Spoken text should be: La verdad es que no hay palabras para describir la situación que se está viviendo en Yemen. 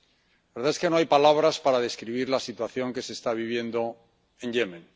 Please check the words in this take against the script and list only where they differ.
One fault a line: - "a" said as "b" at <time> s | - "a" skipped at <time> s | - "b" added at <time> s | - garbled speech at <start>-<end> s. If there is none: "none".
none